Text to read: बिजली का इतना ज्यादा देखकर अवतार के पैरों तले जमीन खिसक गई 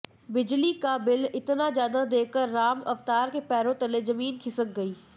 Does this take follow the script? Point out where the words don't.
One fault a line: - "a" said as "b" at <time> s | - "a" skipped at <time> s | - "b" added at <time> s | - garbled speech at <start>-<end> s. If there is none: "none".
- "बिल" added at 1.0 s
- "राम" added at 2.5 s